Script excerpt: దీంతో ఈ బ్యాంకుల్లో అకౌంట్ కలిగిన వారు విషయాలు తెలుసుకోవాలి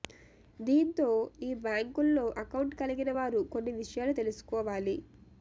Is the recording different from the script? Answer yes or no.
yes